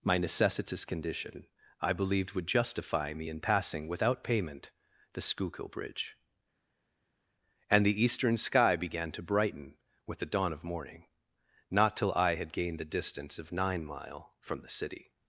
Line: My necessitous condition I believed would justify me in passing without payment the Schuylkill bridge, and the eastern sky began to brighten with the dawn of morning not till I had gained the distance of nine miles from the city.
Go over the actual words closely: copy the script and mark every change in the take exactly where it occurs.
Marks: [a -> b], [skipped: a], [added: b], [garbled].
My necessitous condition I believed would justify me in passing without payment the Schuylkill bridge, and the eastern sky began to brighten with the dawn of morning not till I had gained the distance of nine [miles -> mile] from the city.